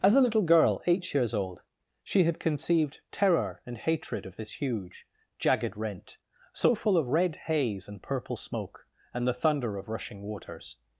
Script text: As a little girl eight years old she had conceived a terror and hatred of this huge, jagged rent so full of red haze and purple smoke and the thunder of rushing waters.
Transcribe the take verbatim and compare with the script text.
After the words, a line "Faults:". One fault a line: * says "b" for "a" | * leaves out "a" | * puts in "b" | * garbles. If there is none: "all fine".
As a little girl eight years old she had conceived terror and hatred of this huge, jagged rent so full of red haze and purple smoke and the thunder of rushing waters.
Faults:
* leaves out "a"